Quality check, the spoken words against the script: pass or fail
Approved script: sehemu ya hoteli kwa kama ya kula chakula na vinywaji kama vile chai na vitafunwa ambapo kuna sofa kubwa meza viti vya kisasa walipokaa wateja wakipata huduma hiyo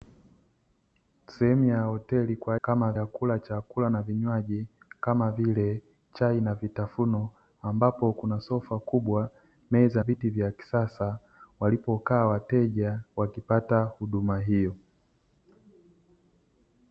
pass